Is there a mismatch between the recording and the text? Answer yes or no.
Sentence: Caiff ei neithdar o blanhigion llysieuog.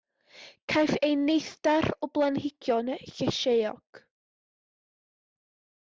no